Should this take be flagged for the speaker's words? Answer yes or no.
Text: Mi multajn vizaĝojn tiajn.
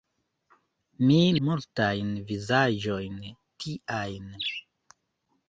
no